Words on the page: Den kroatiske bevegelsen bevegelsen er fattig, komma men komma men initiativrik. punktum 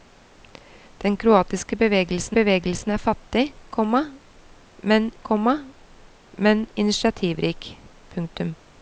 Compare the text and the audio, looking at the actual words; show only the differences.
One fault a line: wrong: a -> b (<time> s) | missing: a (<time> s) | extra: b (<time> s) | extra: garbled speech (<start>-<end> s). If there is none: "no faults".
no faults